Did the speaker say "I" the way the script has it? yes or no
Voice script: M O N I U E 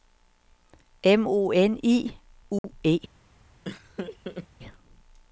yes